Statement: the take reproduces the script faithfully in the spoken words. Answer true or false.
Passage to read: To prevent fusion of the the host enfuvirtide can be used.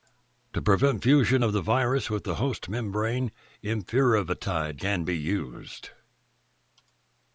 false